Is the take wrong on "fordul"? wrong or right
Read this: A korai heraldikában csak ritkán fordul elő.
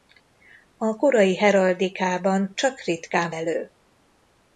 wrong